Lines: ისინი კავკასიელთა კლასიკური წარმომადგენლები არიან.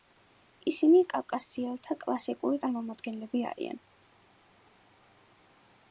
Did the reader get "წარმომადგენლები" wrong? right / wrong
right